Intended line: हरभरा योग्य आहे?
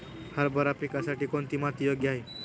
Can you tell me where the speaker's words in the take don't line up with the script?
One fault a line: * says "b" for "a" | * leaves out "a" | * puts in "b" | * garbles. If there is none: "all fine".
* puts in "पिकासाठी कोणती माती"